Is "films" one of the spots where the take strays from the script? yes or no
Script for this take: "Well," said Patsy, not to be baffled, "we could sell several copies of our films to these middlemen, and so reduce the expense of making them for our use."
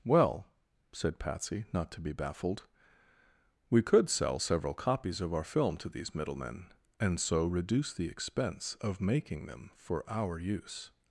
yes